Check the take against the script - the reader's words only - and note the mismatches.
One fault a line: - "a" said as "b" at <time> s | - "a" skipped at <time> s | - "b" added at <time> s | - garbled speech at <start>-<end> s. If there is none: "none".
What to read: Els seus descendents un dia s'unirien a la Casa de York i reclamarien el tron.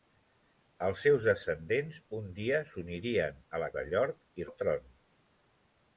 - "Casa" skipped at 3.7 s
- "reclamarien" skipped at 4.5 s